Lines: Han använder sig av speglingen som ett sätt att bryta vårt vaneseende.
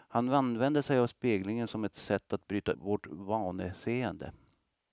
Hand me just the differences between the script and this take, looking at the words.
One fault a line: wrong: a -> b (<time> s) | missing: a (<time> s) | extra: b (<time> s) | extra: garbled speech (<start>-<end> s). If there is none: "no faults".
no faults